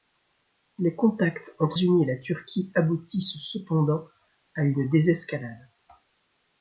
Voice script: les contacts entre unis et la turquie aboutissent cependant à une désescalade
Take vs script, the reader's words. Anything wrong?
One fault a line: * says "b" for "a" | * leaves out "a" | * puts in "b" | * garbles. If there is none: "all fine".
all fine